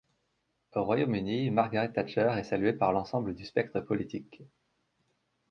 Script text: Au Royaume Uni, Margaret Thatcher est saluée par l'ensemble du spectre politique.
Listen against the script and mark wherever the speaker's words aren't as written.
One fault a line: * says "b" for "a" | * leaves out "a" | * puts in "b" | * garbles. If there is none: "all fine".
all fine